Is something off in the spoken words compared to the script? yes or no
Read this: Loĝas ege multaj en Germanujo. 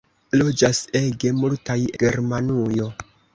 yes